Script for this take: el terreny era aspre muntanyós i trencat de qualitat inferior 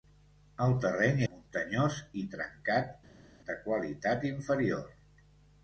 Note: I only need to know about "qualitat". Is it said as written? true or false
true